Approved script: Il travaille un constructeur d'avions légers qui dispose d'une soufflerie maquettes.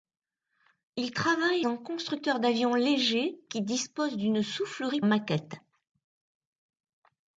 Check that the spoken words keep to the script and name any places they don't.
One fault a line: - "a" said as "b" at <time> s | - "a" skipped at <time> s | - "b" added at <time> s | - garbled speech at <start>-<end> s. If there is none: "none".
none